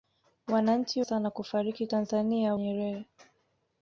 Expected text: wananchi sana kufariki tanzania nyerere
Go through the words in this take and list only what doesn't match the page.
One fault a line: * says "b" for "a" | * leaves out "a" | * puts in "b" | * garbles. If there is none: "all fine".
all fine